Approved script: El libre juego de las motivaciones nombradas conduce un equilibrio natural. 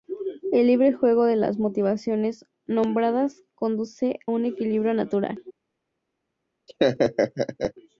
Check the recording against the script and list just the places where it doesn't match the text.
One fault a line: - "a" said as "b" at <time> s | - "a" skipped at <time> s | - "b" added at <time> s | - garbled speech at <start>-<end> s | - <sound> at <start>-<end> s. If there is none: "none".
- laugh at 6.7-7.7 s